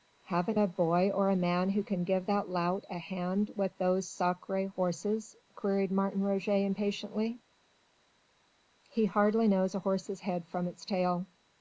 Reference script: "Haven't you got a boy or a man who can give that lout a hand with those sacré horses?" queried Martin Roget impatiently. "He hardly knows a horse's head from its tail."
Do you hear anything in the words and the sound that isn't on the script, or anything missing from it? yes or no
yes